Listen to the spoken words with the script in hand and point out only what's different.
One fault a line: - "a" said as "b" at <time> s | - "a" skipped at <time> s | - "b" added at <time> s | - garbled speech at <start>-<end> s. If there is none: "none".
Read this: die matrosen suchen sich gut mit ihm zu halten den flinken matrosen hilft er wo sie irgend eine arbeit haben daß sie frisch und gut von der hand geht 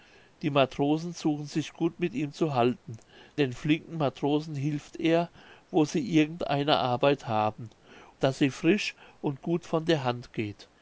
none